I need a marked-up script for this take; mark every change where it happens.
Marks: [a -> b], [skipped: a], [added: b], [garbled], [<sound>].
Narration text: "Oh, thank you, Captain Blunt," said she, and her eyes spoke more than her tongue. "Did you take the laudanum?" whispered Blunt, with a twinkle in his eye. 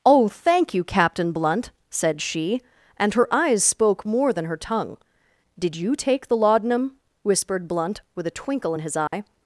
"Oh, thank you, Captain Blunt," said she, and her eyes spoke more than her tongue. "Did you take the laudanum?" whispered Blunt, with a twinkle in his eye. [dropout]